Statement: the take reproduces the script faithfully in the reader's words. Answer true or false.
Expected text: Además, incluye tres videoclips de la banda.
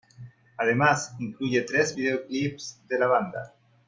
true